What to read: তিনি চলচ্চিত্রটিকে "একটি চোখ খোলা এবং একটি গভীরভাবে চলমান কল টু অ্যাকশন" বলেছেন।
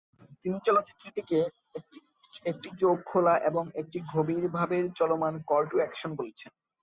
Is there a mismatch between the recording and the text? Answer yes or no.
no